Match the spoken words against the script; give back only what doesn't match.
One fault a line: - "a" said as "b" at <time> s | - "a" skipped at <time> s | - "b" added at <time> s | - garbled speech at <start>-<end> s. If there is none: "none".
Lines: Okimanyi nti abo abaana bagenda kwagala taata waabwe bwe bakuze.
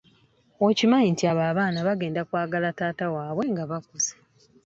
- "bwe" said as "nga" at 3.5 s